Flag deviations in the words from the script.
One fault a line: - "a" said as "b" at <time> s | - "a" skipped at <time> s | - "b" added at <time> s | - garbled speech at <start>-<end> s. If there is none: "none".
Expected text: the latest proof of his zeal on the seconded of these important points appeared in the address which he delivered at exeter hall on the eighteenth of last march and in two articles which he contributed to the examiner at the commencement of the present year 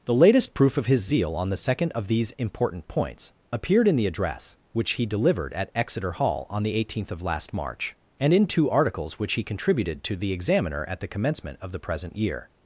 - "seconded" said as "second" at 1.6 s